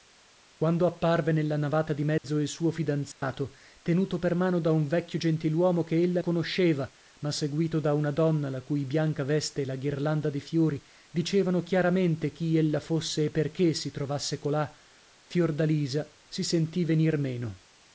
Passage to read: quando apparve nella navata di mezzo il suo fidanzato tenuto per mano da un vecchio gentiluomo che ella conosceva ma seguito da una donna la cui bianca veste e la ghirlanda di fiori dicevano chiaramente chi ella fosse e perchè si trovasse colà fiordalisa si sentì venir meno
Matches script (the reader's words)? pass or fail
pass